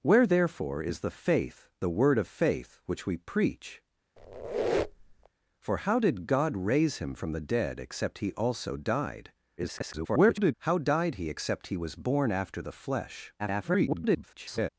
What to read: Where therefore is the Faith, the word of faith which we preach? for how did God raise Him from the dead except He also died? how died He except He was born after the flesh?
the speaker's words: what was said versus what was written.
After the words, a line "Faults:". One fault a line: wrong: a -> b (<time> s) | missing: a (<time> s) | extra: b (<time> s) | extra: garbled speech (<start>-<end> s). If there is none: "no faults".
Where therefore is the Faith, the word of faith which we preach? for how did God raise Him from the dead except He also died? [garbled] how died He except He was born after the flesh? [garbled]
Faults:
extra: garbled speech (9.6-10.5 s)
extra: garbled speech (13.4-14.7 s)